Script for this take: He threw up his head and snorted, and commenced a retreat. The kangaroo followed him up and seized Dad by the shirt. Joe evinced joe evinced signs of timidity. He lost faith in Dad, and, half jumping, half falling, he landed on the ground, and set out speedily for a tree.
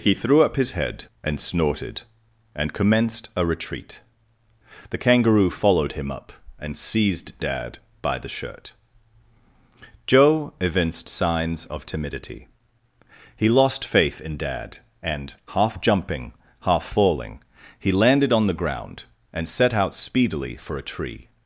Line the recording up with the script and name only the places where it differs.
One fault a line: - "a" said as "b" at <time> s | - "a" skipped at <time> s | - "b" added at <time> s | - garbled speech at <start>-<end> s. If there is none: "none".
- "joe evinced" skipped at 11.1 s